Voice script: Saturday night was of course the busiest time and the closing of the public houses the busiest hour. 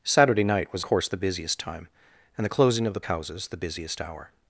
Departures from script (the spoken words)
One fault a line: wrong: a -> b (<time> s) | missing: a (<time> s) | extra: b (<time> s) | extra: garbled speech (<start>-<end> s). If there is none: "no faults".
missing: of (0.8 s)
missing: public (3.0 s)